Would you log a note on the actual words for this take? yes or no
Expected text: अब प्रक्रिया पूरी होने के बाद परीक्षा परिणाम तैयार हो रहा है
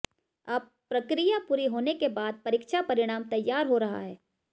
no